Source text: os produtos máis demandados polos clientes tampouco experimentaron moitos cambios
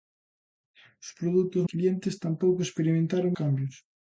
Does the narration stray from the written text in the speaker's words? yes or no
yes